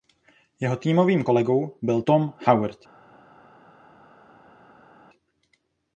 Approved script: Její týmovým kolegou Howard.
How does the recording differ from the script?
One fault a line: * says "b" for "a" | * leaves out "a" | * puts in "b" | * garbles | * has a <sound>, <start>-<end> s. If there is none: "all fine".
* says "Jeho" for "Její"
* puts in "byl Tom"